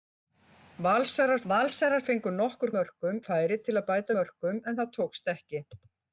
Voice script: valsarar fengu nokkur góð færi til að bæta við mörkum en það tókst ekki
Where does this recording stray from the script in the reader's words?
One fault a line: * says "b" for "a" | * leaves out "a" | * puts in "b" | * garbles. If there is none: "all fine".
* puts in "valsarar"
* says "mörkum" for "góð"
* leaves out "við"